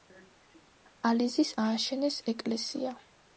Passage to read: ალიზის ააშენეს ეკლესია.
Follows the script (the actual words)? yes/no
yes